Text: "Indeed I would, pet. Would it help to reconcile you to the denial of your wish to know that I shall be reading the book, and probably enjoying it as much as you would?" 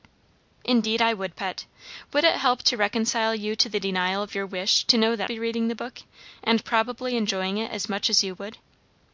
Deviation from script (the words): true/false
true